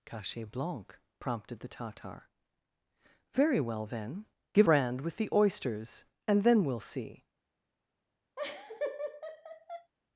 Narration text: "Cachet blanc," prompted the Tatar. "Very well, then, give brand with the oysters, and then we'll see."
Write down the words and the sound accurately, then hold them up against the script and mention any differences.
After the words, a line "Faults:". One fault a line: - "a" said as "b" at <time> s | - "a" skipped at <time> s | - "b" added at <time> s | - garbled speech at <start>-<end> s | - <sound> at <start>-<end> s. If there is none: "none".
"Cachet blanc," prompted the Tatar. "Very well, then, give brand with the oysters, and then we'll see."
Faults:
- laugh at 8.4-9.9 s